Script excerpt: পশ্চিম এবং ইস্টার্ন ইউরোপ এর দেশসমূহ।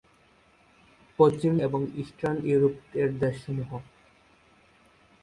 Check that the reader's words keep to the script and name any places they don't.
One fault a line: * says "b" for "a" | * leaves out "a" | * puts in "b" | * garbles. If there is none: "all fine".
all fine